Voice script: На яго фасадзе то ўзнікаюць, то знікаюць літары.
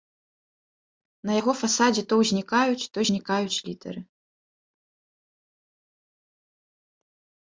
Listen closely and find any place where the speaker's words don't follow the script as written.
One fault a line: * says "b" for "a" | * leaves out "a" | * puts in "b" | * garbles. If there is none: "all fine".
all fine